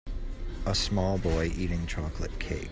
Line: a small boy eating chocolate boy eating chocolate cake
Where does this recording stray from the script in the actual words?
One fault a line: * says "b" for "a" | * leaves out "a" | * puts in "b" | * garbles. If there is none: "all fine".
* leaves out "boy eating chocolate"